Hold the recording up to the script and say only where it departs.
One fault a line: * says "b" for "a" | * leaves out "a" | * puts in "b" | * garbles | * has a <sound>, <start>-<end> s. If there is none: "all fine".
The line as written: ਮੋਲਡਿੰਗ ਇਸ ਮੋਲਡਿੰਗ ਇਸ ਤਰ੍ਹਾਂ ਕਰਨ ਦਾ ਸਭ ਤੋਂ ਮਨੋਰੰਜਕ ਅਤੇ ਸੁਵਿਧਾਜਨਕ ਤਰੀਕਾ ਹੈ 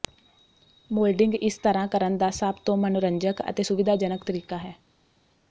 * leaves out "ਮੋਲਡਿੰਗ ਇਸ"